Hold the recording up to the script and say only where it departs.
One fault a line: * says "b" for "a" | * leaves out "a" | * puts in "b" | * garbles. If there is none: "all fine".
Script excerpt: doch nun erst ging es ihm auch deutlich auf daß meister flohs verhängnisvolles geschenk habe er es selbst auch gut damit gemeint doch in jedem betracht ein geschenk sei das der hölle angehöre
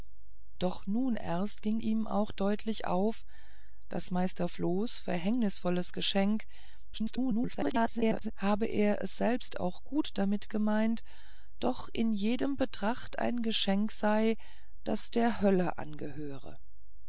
* leaves out "es"
* garbles